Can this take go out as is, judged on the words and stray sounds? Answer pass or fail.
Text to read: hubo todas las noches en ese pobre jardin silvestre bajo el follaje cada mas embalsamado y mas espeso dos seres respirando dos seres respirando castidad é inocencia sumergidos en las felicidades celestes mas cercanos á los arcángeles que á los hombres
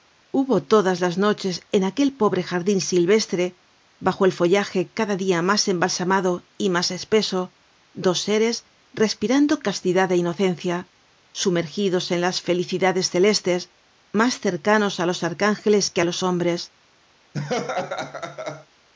fail